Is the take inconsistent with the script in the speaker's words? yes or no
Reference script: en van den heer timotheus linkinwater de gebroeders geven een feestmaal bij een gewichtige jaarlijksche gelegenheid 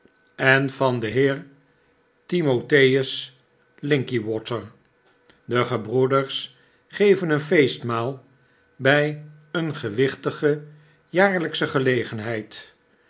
no